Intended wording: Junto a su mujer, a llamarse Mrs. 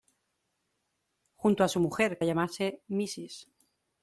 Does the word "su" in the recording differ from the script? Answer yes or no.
no